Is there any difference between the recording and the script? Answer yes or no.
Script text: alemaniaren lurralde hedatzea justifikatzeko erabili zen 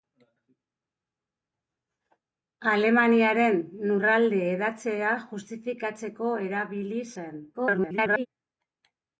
yes